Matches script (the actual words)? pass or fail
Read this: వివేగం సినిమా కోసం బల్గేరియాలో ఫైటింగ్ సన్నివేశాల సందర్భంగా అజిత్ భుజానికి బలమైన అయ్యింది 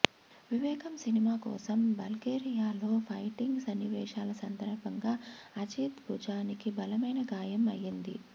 fail